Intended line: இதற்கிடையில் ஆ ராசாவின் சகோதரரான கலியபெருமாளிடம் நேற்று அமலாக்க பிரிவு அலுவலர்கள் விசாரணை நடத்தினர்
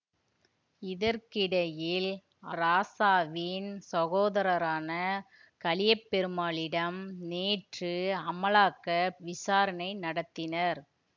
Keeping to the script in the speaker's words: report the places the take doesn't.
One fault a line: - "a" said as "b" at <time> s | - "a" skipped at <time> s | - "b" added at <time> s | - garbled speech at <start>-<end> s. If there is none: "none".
- "ஆ" skipped at 2.1 s
- "பிரிவு அலுவலர்கள்" skipped at 8.9 s